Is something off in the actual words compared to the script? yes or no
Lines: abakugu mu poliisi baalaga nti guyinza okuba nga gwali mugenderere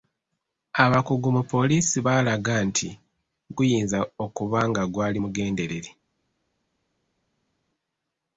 no